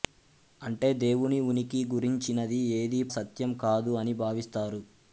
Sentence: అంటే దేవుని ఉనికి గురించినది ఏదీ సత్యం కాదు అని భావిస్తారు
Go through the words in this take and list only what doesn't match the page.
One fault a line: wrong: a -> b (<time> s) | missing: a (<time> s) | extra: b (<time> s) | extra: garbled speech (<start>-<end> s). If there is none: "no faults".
no faults